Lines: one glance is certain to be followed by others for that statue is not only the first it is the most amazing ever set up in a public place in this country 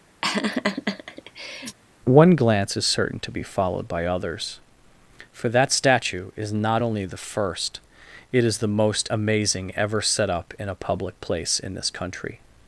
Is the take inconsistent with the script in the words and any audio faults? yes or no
yes